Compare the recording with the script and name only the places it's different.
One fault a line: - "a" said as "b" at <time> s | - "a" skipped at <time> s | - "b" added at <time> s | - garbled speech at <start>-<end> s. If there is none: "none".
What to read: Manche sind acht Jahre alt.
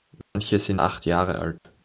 none